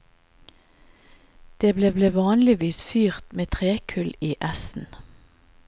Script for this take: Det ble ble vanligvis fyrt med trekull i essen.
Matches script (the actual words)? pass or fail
pass